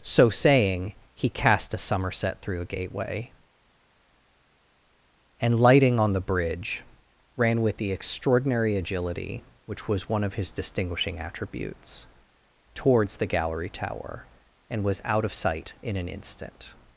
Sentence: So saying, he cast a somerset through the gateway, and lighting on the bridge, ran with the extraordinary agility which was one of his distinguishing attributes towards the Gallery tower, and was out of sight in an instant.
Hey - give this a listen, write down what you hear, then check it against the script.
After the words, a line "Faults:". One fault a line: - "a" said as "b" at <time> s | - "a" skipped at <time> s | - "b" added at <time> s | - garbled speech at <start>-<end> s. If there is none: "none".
So saying, he cast a somerset through a gateway, and lighting on the bridge, ran with the extraordinary agility which was one of his distinguishing attributes towards the Gallery tower, and was out of sight in an instant.
Faults:
- "the" said as "a" at 2.6 s